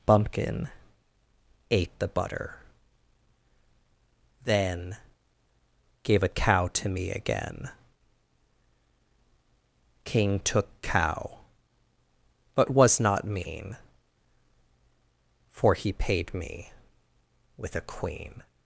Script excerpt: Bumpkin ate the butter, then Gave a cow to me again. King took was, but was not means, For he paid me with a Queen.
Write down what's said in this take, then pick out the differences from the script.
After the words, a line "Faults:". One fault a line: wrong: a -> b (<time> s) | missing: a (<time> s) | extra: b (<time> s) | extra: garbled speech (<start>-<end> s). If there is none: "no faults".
Bumpkin ate the butter, then Gave a cow to me again. King took cow, but was not mean, For he paid me with a Queen.
Faults:
wrong: was -> cow (10.8 s)
wrong: means -> mean (13.2 s)